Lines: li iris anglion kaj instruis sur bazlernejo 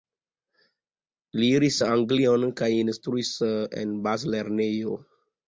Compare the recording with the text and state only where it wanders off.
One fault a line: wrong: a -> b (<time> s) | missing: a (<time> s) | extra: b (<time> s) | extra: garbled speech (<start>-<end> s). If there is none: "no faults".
wrong: sur -> en (3.8 s)